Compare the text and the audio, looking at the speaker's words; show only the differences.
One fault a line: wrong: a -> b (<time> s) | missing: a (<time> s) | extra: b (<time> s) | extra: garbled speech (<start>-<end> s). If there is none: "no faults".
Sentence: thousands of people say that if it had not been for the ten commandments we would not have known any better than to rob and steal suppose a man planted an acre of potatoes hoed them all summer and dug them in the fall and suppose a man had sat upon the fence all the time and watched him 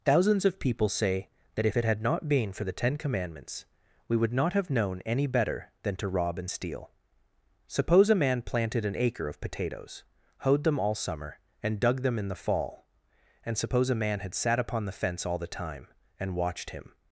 no faults